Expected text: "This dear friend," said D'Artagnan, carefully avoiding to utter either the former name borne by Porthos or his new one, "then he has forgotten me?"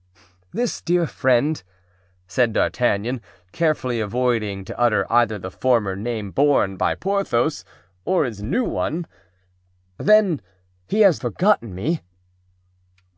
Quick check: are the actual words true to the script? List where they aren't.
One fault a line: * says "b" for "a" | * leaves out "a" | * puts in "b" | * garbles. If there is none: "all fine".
all fine